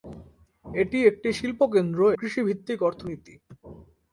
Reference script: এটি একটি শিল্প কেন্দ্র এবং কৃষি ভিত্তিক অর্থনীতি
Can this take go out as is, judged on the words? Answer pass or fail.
fail